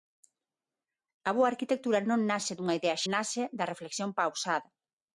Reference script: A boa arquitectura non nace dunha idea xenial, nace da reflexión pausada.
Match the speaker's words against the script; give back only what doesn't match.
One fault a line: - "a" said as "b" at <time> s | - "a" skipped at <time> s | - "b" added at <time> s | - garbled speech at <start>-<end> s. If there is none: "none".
- "xenial" skipped at 3.0 s